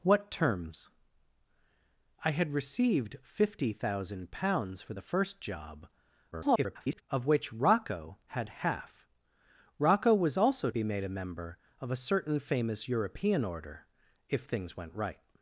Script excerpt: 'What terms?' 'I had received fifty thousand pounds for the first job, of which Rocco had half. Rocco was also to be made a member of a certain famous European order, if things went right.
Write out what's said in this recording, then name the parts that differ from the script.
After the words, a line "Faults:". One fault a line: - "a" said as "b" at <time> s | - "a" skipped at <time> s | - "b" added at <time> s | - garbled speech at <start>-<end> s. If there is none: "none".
'What terms?' 'I had received fifty thousand pounds for the first job, [garbled] of which Rocco had half. Rocco was also be made a member of a certain famous European order, if things went right.
Faults:
- garbled speech at 6.3-7.0 s
- "to" skipped at 10.7 s